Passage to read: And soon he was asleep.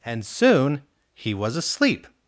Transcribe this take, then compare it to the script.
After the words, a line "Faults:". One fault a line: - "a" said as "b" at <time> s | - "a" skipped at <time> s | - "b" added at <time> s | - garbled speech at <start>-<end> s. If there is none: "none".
And soon he was asleep.
Faults:
none